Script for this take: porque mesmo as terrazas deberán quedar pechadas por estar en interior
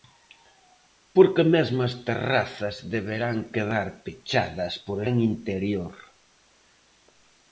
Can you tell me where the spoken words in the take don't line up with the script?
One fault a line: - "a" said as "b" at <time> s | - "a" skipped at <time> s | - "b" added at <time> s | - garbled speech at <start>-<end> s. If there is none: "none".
- "estar" skipped at 5.0 s